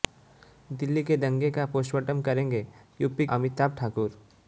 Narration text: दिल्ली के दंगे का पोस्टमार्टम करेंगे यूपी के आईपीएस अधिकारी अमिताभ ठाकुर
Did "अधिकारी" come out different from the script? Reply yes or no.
yes